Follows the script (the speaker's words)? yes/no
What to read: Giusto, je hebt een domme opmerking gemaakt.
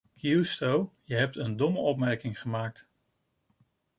yes